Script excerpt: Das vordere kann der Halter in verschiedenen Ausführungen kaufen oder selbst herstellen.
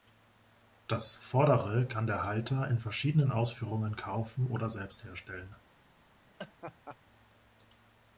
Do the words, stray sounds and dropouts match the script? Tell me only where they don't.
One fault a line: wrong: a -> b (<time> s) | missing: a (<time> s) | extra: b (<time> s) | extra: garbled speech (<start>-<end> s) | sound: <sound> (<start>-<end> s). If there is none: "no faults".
sound: laugh (6.4-7.0 s)